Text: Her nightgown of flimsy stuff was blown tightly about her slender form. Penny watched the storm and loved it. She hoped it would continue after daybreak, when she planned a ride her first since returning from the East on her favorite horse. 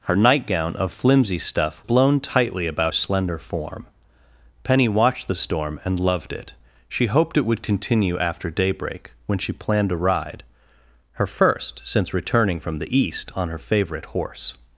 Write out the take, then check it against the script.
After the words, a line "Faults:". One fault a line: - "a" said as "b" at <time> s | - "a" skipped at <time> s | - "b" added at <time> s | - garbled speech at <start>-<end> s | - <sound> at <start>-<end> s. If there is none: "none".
Her nightgown of flimsy stuff blown tightly about slender form. Penny watched the storm and loved it. She hoped it would continue after daybreak, when she planned a ride her first since returning from the East on her favorite horse.
Faults:
- "was" skipped at 1.8 s
- "her" skipped at 2.9 s